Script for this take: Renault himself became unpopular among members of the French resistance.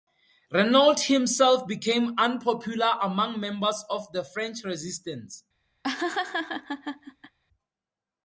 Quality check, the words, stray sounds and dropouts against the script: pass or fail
fail